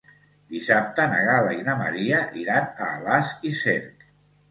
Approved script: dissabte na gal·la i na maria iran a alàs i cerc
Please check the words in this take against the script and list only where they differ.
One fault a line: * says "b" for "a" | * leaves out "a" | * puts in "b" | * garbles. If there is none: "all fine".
all fine